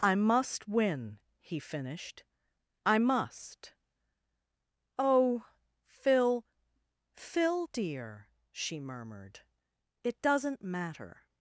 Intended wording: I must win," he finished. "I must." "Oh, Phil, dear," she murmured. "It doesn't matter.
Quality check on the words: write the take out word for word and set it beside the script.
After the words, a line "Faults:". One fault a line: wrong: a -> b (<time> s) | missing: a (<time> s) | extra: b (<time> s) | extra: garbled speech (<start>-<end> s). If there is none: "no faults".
I must win," he finished. "I must." "Oh, Phil Phil, dear," she murmured. "It doesn't matter.
Faults:
extra: Phil (7.1 s)